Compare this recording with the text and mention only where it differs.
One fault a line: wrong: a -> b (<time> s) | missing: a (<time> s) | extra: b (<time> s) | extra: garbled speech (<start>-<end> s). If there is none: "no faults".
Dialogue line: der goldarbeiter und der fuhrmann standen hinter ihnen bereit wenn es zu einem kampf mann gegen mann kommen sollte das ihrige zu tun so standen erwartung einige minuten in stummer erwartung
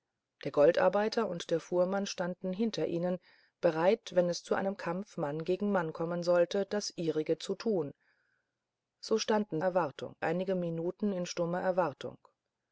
no faults